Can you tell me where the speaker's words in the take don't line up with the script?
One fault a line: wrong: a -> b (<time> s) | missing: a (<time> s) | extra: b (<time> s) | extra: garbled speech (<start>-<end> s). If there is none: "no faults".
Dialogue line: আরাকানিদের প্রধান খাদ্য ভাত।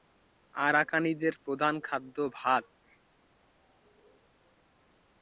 no faults